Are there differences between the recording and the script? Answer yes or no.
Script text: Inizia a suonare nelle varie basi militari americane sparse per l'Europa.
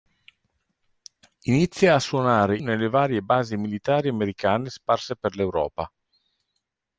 no